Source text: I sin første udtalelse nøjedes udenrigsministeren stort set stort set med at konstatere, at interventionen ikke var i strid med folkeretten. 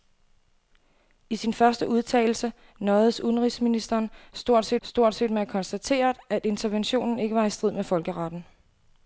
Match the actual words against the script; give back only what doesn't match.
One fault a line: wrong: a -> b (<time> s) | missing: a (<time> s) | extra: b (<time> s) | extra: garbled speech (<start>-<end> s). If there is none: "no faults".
no faults